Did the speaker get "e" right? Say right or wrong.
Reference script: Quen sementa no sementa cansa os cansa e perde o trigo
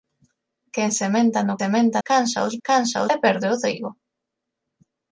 right